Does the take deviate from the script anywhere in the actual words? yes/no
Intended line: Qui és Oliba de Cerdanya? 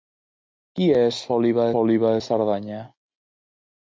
yes